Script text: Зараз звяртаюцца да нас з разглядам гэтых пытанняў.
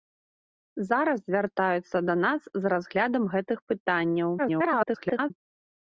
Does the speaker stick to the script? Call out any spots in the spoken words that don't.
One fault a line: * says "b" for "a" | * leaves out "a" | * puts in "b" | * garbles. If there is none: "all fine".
* garbles